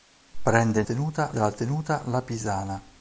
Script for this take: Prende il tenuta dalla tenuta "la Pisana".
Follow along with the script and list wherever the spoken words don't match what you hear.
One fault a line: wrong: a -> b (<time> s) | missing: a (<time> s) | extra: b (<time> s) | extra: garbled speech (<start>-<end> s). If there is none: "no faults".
no faults